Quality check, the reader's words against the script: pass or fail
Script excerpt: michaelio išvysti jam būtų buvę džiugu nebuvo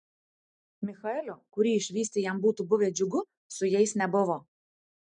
fail